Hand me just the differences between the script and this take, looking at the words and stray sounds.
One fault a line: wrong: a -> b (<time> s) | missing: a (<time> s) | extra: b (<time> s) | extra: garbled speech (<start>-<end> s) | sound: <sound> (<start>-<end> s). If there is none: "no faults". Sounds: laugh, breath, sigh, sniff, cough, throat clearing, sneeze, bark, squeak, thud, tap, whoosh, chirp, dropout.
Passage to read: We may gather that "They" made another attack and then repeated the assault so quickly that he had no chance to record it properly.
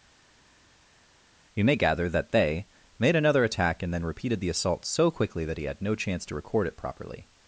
wrong: We -> You (1.5 s)